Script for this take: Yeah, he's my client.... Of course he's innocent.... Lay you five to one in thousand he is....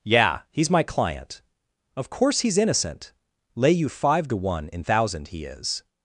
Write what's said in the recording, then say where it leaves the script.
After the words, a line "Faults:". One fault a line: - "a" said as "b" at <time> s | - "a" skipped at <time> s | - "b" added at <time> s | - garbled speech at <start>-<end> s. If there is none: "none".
Yeah, he's my client.... Of course he's innocent.... Lay you five to one in thousand he is....
Faults:
none